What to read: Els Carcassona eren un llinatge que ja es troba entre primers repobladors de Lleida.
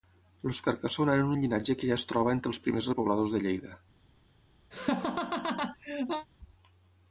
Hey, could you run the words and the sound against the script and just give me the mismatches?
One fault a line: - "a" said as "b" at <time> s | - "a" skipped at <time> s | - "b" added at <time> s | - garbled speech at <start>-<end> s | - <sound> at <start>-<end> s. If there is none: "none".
- "els" added at 2.5 s
- laugh at 4.7-6.3 s